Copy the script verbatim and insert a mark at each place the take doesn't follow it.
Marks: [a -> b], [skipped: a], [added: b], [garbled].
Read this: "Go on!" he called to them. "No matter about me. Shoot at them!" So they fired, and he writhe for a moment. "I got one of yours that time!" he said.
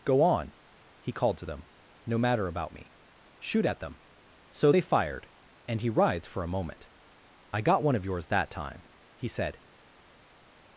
"Go on!" he called to them. "No matter about me. Shoot at them!" So they fired, and he [writhe -> writhed] for a moment. "I got one of yours that time!" he said.